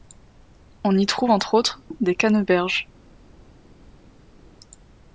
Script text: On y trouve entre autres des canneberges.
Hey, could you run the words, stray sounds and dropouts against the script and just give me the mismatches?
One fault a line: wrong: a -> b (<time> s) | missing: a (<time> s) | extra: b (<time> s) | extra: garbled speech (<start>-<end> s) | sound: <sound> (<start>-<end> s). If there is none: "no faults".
no faults